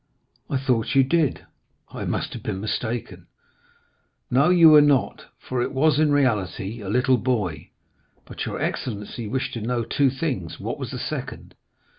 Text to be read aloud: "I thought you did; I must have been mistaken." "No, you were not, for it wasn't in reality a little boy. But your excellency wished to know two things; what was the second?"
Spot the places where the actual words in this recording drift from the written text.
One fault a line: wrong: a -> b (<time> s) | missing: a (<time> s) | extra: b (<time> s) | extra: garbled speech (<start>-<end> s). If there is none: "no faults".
wrong: wasn't -> was (5.7 s)